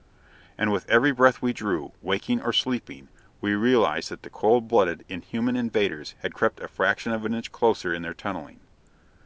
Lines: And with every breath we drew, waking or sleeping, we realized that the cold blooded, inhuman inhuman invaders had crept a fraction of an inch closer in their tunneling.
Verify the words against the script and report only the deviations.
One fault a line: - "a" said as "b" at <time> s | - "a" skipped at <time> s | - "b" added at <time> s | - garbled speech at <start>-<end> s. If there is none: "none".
- "inhuman" skipped at 5.5 s